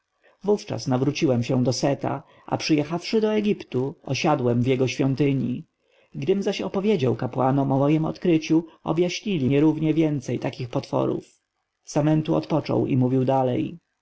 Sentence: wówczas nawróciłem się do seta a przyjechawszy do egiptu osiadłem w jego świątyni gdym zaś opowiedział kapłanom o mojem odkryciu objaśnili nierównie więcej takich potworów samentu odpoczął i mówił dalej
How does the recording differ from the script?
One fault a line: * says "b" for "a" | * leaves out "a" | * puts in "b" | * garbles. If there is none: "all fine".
all fine